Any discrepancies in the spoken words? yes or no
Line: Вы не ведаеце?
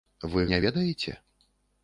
no